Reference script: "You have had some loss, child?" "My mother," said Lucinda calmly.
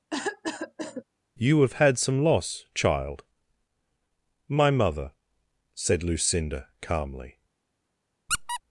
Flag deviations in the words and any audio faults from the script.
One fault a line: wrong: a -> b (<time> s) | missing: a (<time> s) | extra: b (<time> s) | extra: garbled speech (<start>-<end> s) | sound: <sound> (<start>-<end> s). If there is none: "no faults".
sound: cough (0.1-1.0 s)
sound: squeak (8.3-8.6 s)